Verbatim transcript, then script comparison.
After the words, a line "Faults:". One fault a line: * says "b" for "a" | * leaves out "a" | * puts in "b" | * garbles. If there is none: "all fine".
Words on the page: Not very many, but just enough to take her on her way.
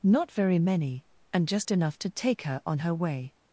Not very many, and just enough to take her on her way.
Faults:
* says "and" for "but"